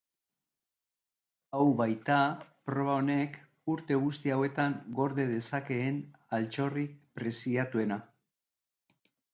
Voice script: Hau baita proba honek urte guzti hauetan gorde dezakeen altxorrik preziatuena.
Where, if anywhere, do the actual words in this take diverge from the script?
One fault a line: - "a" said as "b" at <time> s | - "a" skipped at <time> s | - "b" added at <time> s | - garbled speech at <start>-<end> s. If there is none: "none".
none